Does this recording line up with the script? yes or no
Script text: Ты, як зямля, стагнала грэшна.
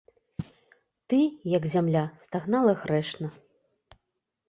yes